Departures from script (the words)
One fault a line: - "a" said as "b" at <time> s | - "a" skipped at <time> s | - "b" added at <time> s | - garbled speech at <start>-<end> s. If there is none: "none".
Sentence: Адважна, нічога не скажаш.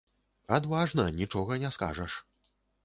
none